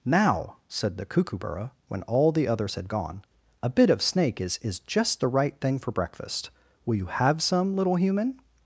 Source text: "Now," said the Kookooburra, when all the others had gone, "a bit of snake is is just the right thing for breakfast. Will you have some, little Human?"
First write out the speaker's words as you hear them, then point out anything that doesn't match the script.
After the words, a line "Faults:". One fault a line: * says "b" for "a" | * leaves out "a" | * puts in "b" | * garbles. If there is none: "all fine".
"Now," said the Kookooburra, when all the others had gone, "a bit of snake is is just the right thing for breakfast. Will you have some, little Human?"
Faults:
all fine